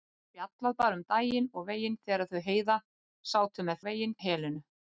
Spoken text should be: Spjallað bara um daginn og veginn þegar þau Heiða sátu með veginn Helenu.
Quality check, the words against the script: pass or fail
pass